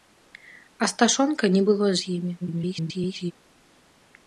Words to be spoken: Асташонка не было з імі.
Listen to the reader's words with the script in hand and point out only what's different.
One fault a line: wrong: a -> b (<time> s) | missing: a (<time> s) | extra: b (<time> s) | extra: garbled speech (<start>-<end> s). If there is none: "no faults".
extra: garbled speech (2.4-3.3 s)